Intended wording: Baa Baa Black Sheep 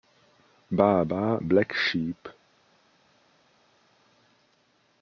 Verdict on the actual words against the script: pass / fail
pass